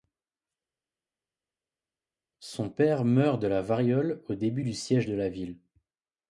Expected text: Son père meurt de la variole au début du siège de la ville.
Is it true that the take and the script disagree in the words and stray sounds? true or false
false